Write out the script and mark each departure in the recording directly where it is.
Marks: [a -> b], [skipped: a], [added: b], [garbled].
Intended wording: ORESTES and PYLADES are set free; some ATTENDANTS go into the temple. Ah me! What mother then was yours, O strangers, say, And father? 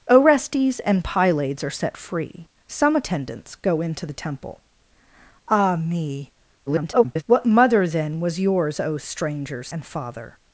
ORESTES and PYLADES are set free; some ATTENDANTS go into the temple. Ah me! [garbled] What mother then was yours, O strangers, [skipped: say,] And father?